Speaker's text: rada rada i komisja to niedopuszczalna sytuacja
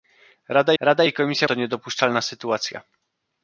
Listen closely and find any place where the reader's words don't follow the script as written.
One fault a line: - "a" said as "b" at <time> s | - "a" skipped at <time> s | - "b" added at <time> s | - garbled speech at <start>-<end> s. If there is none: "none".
none